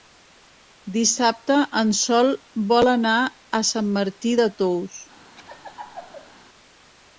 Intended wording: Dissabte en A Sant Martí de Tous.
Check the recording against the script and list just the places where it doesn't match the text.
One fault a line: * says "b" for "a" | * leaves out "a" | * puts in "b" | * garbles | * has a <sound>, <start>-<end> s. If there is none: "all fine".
* puts in "Sol vol anar"
* has a laugh, 5.4-6.3 s